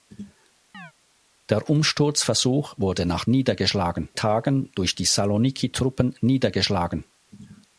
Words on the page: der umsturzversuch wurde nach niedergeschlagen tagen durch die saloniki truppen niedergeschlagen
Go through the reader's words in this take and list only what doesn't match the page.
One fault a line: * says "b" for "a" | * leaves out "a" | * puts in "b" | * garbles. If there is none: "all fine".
all fine